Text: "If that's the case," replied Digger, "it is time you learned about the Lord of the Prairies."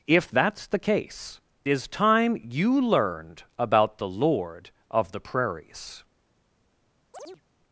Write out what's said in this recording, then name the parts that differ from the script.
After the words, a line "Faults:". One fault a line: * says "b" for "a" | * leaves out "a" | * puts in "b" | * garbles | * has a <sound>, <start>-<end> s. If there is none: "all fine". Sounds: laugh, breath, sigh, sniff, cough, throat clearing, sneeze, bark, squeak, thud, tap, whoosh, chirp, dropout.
"If that's the case," is time you learned about the Lord of the Prairies."
Faults:
* leaves out "replied Digger it"
* has a chirp, 7.1-7.4 s